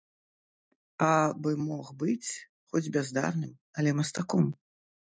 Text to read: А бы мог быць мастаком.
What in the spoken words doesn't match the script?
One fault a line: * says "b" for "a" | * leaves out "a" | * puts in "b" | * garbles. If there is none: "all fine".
* puts in "хоць бяздарным але"